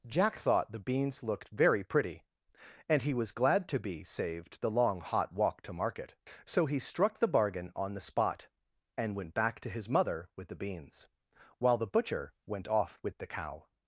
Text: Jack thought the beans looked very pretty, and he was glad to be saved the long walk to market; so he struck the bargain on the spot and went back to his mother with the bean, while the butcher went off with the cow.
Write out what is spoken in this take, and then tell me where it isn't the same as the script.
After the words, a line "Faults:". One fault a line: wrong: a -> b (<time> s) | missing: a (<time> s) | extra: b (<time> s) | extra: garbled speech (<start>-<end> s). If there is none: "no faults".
Jack thought the beans looked very pretty, and he was glad to be saved the long hot walk to market; so he struck the bargain on the spot and went back to his mother with the beans, while the butcher went off with the cow.
Faults:
extra: hot (5.0 s)
wrong: bean -> beans (10.6 s)